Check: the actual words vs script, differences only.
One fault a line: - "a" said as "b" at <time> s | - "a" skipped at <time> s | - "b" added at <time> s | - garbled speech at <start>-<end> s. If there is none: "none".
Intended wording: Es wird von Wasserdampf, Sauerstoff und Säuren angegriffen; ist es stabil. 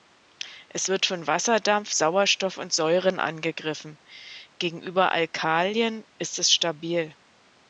- "gegenüber Alkalien" added at 4.6 s